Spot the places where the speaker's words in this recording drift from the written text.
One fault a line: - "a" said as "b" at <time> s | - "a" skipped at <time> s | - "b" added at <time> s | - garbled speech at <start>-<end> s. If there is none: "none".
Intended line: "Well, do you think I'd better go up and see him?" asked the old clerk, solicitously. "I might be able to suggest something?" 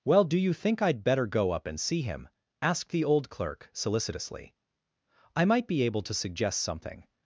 none